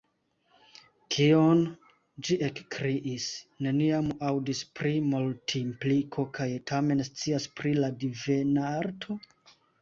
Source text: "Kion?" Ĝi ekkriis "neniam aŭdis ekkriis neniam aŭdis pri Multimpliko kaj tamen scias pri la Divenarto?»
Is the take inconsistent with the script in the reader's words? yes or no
yes